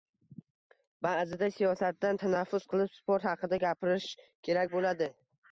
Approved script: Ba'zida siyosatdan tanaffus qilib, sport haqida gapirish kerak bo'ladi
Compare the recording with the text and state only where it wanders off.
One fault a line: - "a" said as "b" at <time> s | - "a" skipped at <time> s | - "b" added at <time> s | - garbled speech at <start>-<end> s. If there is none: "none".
none